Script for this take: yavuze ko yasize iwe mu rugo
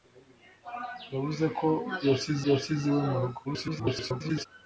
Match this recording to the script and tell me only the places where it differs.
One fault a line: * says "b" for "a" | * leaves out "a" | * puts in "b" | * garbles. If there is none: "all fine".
* puts in "yasize"
* garbles